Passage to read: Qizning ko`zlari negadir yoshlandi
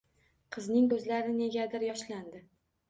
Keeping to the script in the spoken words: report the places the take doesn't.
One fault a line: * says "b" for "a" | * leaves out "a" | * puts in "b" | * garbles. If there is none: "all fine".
all fine